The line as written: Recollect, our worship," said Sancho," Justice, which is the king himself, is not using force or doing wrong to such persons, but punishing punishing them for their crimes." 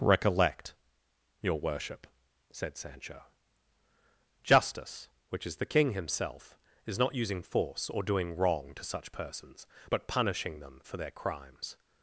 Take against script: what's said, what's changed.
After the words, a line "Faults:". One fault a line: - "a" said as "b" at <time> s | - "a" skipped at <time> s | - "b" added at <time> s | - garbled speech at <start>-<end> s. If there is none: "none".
Recollect, your worship," said Sancho," Justice, which is the king himself, is not using force or doing wrong to such persons, but punishing them for their crimes."
Faults:
- "our" said as "your" at 1.4 s
- "punishing" skipped at 10.6 s